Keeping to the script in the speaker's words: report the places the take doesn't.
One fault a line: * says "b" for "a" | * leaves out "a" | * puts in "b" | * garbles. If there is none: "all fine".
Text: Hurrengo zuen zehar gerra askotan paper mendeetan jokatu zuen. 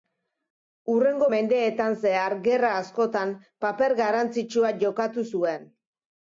* says "mendeetan" for "zuen"
* says "garrantzitsua" for "mendeetan"